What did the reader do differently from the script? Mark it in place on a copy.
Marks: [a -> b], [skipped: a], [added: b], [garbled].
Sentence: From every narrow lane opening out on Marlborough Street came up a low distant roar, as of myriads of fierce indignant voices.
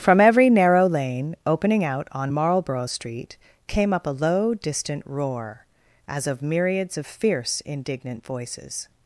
From every narrow lane opening out on Marlborough Street came up a low distant roar, as of myriads of fierce indignant voices.